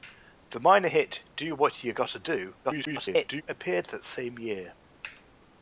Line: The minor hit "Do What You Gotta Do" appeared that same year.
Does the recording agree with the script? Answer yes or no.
no